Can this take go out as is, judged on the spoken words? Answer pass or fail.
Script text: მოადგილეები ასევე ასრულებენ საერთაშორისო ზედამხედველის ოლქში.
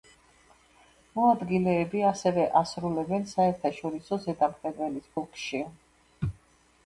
pass